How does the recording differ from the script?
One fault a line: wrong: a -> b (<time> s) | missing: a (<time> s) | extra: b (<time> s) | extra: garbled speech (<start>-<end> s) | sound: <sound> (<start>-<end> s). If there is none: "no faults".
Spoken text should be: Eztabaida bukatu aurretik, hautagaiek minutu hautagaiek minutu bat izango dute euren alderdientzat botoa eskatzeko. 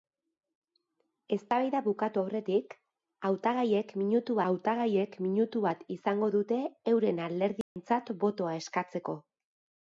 sound: dropout (7.6-7.8 s)